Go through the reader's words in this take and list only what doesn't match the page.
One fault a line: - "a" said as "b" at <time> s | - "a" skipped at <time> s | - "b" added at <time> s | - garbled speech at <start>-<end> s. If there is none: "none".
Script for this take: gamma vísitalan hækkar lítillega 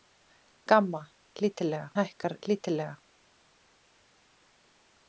- "vísitalan" said as "lítillega" at 1.4 s